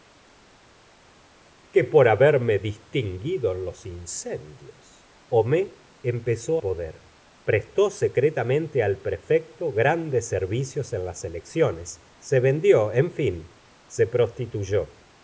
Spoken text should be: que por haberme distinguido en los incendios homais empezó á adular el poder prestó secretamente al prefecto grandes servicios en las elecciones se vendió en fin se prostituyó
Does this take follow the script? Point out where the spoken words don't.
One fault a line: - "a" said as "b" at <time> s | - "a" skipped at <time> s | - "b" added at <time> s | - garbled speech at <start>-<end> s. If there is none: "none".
- "á adular el" skipped at 6.5 s